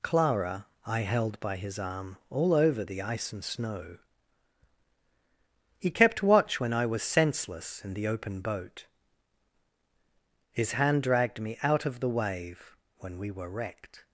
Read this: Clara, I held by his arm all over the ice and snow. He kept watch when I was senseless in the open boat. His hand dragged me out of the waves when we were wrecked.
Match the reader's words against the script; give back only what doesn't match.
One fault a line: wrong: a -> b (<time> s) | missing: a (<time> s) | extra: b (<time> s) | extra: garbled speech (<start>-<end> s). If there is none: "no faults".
wrong: waves -> wave (12.1 s)